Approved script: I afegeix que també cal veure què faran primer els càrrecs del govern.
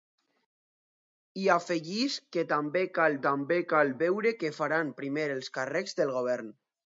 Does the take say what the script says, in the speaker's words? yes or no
no